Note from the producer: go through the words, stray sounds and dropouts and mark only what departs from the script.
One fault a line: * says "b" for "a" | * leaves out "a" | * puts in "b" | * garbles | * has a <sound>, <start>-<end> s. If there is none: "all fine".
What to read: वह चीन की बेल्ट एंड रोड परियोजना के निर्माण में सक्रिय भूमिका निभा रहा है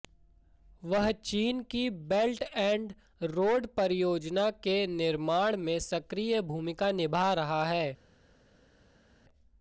all fine